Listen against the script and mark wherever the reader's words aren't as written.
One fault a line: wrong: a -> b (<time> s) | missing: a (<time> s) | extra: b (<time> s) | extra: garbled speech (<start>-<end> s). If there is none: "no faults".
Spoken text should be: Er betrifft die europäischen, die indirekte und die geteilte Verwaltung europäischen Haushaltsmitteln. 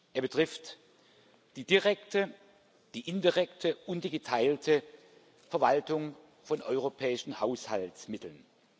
wrong: europäischen -> direkte (1.6 s)
extra: von (6.4 s)